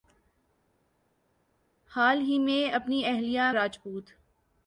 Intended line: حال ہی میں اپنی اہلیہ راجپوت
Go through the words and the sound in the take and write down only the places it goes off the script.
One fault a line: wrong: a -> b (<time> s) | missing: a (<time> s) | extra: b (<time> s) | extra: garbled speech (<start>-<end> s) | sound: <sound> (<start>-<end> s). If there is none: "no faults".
no faults